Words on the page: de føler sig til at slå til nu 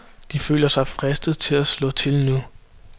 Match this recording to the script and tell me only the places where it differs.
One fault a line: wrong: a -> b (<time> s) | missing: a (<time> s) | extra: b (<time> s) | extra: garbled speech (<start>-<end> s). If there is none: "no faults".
extra: fristet (0.9 s)